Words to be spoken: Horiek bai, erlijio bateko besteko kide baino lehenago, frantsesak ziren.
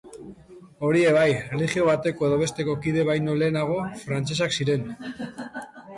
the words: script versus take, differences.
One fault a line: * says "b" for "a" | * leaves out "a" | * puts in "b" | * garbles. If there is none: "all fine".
* puts in "edo"